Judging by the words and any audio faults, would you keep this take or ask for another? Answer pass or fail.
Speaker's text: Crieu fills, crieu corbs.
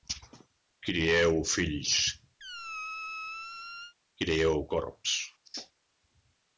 fail